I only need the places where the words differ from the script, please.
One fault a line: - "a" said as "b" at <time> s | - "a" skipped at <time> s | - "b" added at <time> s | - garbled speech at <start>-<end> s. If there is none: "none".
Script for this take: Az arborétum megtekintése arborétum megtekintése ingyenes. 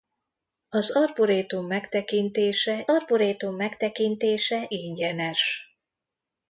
none